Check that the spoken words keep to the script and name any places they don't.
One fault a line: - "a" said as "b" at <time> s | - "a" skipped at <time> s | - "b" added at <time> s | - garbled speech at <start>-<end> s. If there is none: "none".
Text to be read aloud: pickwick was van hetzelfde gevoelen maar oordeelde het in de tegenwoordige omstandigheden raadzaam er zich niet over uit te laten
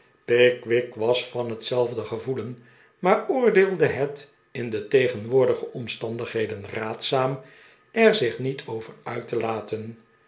none